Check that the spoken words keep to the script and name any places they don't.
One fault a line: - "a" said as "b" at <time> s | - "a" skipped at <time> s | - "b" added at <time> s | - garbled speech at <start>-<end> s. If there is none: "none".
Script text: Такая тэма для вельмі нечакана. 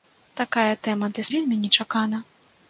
none